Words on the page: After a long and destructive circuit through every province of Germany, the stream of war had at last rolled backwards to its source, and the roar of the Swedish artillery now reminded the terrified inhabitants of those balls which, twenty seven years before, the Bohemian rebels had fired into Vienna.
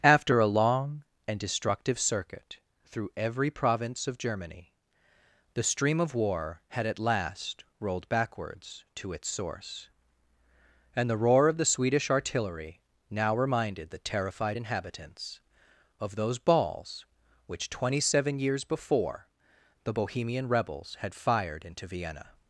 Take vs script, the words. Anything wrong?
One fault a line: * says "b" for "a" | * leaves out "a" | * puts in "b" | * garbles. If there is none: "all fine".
all fine